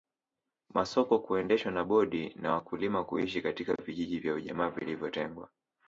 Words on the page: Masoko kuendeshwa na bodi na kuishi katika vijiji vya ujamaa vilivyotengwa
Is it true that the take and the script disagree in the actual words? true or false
true